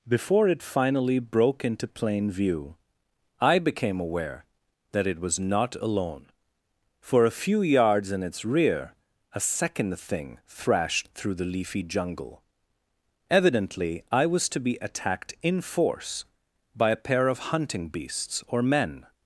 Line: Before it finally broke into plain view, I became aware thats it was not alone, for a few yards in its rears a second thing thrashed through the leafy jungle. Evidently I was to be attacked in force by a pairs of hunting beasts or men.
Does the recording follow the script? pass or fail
fail